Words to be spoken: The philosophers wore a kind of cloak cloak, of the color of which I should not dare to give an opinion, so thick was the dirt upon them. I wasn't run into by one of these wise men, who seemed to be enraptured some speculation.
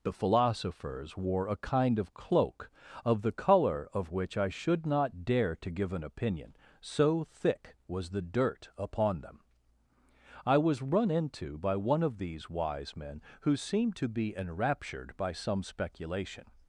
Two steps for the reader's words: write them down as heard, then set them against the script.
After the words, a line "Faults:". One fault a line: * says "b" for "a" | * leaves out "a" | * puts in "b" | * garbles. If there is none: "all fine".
The philosophers wore a kind of cloak, of the color of which I should not dare to give an opinion, so thick was the dirt upon them. I was run into by one of these wise men, who seemed to be enraptured by some speculation.
Faults:
* leaves out "cloak"
* says "was" for "wasn't"
* puts in "by"